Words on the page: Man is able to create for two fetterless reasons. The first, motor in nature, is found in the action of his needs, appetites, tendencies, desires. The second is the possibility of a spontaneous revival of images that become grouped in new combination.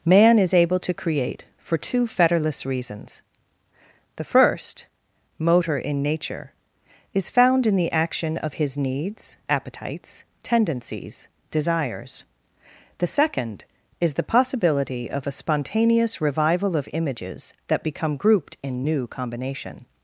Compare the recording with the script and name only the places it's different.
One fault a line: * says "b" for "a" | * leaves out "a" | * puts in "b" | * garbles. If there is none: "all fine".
all fine